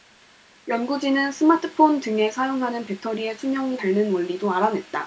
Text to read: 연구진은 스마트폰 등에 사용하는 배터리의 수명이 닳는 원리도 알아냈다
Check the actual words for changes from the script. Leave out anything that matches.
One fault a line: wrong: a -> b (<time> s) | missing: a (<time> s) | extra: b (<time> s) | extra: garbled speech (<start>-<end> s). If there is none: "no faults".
no faults